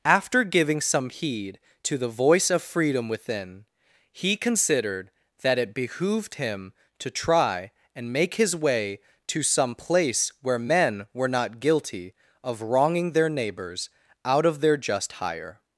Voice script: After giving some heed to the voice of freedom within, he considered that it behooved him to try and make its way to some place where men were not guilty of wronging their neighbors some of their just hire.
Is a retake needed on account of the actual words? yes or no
yes